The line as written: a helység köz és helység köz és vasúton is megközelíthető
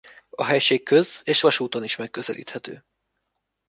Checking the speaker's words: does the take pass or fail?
fail